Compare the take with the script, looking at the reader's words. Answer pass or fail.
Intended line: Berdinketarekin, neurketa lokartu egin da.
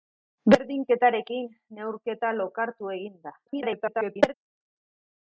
fail